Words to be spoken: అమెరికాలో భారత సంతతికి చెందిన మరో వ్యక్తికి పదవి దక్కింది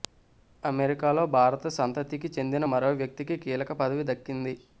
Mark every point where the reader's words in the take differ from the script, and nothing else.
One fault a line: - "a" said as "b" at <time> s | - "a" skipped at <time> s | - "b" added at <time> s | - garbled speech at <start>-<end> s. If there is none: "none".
- "కీలక" added at 3.4 s